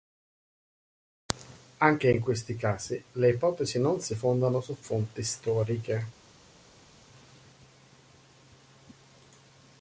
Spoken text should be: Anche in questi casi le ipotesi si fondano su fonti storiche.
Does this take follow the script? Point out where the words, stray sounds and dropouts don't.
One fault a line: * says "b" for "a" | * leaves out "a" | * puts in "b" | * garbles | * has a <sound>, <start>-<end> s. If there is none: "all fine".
* puts in "non"